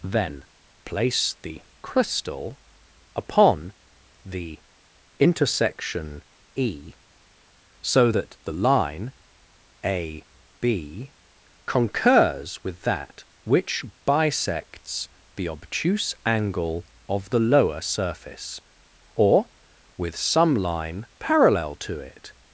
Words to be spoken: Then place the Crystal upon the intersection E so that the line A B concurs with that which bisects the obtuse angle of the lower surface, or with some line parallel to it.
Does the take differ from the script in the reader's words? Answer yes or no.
no